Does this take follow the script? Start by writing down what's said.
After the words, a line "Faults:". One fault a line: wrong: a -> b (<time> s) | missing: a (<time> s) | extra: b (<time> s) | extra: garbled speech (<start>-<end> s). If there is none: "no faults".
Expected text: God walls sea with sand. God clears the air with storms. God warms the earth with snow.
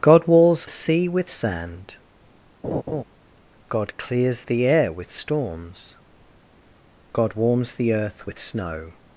God walls sea with sand. God clears the air with storms. God warms the earth with snow.
Faults:
no faults